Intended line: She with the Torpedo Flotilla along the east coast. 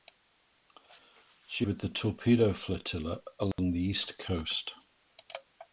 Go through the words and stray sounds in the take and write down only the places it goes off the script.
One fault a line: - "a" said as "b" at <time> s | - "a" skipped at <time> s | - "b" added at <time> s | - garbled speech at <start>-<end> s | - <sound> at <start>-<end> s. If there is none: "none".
- dropout at 3.5-3.6 s